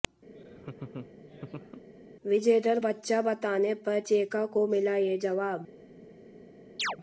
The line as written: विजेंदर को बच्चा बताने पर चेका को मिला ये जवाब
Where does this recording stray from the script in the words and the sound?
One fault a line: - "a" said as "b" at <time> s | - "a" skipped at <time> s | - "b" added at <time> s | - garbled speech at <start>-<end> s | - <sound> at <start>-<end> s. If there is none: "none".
- laugh at 0.3-1.8 s
- "को" skipped at 2.8 s
- chirp at 6.8-7.0 s